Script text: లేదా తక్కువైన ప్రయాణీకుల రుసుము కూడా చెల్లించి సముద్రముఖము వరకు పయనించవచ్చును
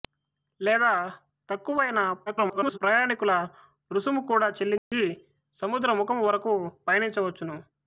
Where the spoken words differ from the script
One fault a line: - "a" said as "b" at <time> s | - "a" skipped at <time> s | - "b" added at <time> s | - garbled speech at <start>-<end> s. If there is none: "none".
- garbled speech at 2.3-2.8 s